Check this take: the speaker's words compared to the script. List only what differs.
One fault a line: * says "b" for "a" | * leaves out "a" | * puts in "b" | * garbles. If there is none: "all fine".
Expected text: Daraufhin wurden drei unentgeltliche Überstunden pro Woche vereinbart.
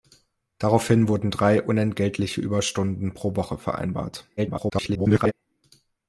* garbles